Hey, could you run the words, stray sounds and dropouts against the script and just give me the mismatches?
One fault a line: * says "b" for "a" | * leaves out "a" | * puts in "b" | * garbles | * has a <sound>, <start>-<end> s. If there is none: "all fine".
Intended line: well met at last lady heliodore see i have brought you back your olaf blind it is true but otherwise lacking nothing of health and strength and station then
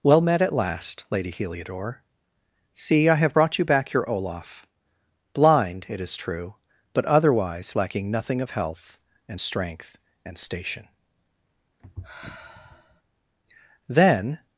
* has a sigh, 11.8-13.0 s